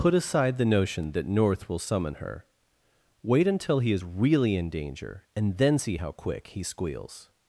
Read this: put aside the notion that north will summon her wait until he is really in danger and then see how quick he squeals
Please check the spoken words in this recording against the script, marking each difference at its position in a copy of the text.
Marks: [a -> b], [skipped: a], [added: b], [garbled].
put aside the notion that north will summon her wait until he is really in danger and then see how quick he squeals